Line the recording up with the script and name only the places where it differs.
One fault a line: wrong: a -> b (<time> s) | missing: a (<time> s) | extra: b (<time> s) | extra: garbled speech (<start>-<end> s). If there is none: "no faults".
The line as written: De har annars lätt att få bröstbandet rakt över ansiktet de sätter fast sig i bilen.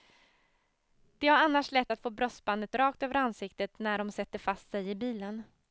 extra: när (3.8 s)